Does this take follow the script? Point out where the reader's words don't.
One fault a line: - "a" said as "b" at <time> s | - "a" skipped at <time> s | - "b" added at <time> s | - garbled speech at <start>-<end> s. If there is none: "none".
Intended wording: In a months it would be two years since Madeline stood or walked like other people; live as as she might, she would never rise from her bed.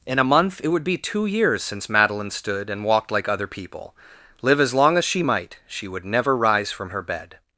- "months" said as "month" at 0.2 s
- "or" said as "and" at 2.7 s
- "long" added at 4.7 s